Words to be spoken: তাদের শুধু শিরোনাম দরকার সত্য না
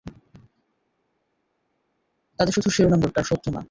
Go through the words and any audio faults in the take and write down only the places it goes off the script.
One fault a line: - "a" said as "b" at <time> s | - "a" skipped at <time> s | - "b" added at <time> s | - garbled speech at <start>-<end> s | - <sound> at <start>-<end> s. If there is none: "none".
none